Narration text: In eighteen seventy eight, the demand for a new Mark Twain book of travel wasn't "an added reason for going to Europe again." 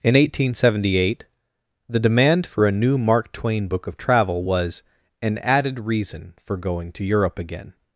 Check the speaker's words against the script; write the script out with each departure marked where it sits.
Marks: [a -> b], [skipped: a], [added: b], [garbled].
In eighteen seventy eight, the demand for a new Mark Twain book of travel [wasn't -> was] "an added reason for going to Europe again."